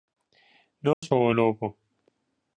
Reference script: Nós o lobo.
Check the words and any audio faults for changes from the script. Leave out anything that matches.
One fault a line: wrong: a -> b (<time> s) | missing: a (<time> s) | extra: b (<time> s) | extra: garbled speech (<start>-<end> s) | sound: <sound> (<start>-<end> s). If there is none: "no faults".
sound: dropout (0.9-1.0 s)